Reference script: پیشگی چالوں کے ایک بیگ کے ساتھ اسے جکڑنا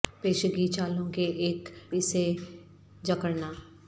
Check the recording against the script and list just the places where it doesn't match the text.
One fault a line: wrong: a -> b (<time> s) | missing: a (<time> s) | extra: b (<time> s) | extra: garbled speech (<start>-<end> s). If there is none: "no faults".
missing: بیگ کے ساتھ (1.7 s)